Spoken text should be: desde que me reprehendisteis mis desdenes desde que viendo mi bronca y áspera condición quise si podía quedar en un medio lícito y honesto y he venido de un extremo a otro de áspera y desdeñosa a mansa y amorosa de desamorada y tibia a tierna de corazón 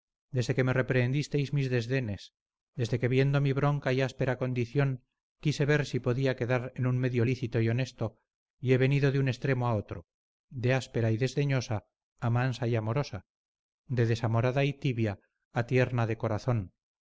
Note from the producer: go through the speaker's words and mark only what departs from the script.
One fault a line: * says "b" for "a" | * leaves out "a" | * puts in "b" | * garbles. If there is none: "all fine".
* puts in "ver"